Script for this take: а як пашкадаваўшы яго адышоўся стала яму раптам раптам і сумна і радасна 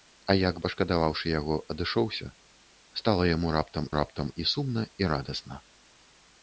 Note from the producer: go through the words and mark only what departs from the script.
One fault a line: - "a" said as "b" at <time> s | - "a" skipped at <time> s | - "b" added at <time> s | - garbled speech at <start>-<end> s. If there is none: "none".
none